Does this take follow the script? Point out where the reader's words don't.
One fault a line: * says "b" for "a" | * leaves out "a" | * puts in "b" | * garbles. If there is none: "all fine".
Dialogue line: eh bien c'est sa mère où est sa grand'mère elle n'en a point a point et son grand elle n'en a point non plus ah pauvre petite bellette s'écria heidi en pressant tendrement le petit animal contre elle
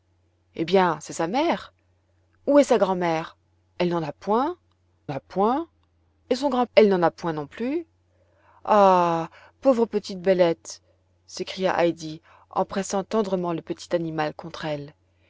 all fine